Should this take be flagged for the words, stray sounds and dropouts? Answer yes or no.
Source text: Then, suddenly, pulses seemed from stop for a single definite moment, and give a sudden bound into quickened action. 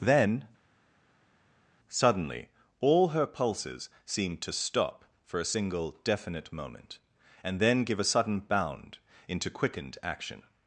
yes